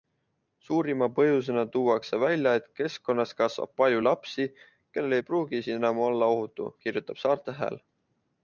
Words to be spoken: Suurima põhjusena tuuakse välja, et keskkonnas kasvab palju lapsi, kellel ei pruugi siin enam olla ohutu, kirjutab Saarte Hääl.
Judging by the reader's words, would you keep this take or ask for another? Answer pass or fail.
pass